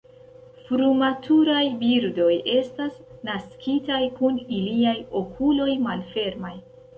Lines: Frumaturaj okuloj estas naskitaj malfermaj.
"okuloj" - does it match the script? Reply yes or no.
no